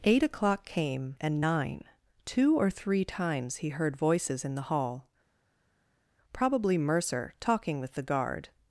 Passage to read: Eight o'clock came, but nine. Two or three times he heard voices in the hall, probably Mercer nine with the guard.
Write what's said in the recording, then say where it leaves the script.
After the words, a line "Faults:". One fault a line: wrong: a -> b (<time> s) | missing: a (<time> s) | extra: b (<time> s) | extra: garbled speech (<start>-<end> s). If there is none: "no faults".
Eight o'clock came, and nine. Two or three times he heard voices in the hall, probably Mercer talking with the guard.
Faults:
wrong: but -> and (1.2 s)
wrong: nine -> talking (7.4 s)